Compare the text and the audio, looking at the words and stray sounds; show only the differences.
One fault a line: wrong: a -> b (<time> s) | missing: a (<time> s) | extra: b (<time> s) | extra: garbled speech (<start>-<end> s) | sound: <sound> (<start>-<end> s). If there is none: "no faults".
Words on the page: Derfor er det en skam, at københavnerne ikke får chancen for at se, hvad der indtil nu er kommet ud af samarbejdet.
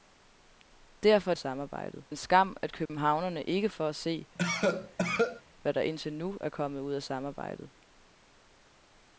wrong: det -> samarbejdet (1.4 s)
sound: dropout (2.9-2.9 s)
missing: får chancen (3.7 s)
sound: cough (4.3-5.4 s)